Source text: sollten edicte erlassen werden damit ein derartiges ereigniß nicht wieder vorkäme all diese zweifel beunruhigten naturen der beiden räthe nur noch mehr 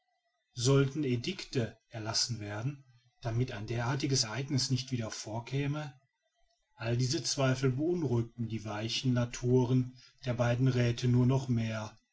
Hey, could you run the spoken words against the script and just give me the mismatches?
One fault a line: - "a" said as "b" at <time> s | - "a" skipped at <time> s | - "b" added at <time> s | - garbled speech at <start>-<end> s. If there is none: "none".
- "die weichen" added at 8.5 s